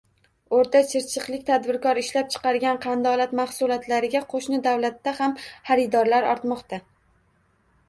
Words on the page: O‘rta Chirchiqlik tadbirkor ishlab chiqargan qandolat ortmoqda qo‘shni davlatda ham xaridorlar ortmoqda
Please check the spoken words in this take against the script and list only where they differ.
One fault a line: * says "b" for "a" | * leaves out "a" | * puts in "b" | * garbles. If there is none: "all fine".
* says "mahsulotlariga" for "ortmoqda"